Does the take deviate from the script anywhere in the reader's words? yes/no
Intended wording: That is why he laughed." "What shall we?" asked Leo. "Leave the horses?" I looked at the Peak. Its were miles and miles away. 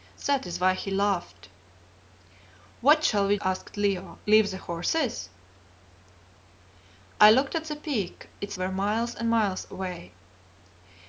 no